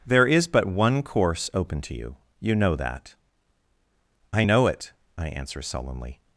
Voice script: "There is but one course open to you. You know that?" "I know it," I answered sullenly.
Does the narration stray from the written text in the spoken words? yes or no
yes